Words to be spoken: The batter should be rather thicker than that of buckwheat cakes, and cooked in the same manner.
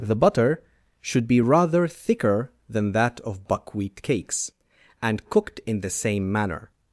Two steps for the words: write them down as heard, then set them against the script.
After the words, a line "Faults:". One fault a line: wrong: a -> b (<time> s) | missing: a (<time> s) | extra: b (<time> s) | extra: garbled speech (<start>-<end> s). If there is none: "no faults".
The butter should be rather thicker than that of buckwheat cakes, and cooked in the same manner.
Faults:
wrong: batter -> butter (0.1 s)